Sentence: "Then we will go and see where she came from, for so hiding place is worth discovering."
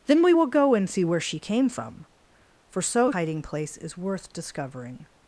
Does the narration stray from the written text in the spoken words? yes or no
no